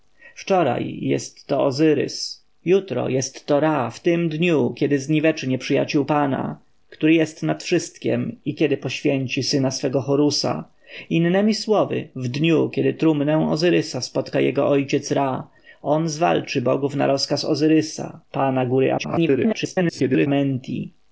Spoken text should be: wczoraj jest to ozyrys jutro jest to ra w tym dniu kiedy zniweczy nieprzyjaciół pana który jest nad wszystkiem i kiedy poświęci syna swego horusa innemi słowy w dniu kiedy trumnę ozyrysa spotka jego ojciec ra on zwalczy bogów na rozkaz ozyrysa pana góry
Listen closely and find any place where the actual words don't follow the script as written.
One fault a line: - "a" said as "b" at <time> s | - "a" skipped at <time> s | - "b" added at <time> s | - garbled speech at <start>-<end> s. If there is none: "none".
- garbled speech at 19.0-20.3 s